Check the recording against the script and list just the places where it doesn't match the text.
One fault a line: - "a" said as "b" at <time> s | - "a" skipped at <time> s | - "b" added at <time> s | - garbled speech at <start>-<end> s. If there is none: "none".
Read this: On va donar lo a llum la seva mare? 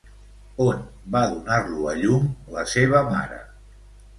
none